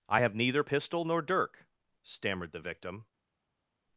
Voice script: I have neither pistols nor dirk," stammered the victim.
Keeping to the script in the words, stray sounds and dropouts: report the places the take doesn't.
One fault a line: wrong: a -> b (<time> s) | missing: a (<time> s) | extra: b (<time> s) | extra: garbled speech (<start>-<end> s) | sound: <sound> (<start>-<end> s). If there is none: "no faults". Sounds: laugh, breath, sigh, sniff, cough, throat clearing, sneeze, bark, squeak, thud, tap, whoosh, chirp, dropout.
wrong: pistols -> pistol (0.6 s)